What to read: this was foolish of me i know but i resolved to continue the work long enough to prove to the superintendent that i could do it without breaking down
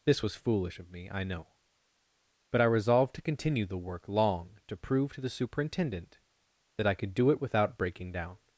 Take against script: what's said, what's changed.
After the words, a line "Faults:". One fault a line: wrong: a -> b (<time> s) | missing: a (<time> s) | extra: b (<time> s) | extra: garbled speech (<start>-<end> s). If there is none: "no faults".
this was foolish of me i know but i resolved to continue the work long to prove to the superintendent that i could do it without breaking down
Faults:
missing: enough (4.6 s)